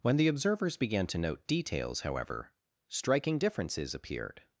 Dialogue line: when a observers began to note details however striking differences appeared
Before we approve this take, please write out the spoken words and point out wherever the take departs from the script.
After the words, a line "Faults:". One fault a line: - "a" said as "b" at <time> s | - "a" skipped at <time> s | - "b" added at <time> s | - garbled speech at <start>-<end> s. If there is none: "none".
when the observers began to note details however striking differences appeared
Faults:
- "a" said as "the" at 0.2 s